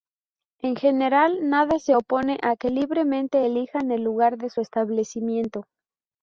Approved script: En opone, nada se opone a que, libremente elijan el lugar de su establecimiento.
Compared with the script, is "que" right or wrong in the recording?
right